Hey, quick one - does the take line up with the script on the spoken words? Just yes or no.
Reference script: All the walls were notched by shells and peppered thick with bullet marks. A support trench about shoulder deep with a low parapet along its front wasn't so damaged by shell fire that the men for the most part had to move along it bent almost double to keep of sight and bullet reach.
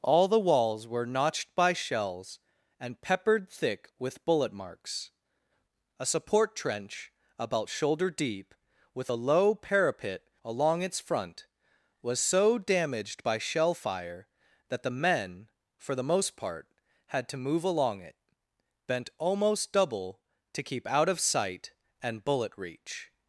no